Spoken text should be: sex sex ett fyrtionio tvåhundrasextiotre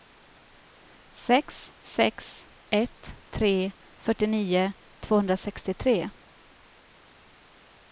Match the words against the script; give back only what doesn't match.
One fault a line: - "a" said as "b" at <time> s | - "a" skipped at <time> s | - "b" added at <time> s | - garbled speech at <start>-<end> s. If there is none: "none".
- "tre" added at 3.3 s